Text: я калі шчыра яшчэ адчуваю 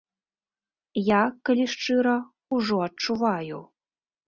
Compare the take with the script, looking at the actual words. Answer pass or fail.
fail